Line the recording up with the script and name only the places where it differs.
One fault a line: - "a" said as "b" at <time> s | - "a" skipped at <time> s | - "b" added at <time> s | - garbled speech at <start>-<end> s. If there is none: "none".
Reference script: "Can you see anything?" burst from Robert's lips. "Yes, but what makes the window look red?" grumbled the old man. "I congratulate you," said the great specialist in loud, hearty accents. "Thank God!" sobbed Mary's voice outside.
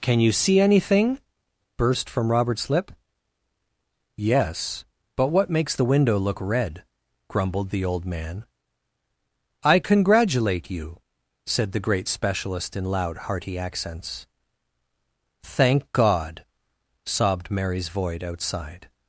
- "lips" said as "lip" at 2.7 s
- "voice" said as "void" at 17.9 s